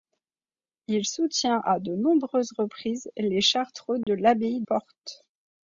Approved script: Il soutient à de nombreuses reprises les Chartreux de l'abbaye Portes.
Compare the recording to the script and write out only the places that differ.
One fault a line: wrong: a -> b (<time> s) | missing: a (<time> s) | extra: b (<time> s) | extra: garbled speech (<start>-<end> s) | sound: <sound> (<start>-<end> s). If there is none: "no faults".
sound: dropout (4.0-4.1 s)